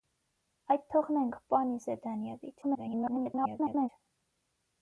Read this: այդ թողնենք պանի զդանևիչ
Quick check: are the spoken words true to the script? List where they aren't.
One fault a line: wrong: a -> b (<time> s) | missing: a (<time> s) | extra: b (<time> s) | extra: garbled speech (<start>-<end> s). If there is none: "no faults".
extra: garbled speech (2.6-3.9 s)